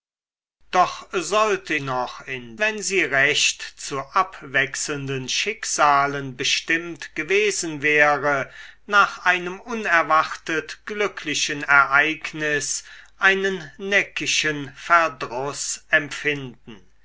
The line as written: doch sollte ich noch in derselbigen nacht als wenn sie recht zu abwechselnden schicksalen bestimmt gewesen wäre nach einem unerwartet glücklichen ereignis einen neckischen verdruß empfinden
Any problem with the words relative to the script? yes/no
yes